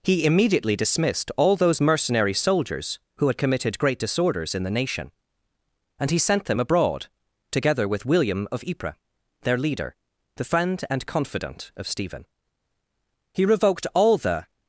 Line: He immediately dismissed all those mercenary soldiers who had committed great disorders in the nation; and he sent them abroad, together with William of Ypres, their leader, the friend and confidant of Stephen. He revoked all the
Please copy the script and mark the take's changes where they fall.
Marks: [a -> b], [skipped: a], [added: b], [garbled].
He immediately dismissed all those mercenary soldiers who had committed great disorders in the nation; and he sent them abroad, together with William of Ypres, their leader, the friend and confidant of Stephen. He revoked all the